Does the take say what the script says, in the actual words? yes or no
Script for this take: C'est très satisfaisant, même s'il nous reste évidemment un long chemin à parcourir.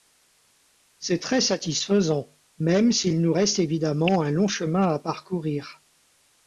yes